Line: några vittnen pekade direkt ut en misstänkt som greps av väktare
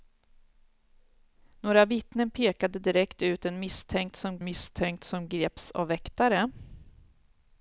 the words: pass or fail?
fail